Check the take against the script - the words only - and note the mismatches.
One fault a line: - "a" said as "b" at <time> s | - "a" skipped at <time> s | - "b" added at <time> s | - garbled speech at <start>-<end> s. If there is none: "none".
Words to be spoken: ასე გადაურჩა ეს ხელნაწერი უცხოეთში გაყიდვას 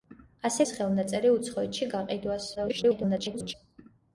- "გადაურჩა" skipped at 0.7 s
- garbled speech at 2.6-3.5 s